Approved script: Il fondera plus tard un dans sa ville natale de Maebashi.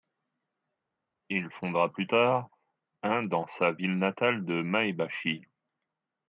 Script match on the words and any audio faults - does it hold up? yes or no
yes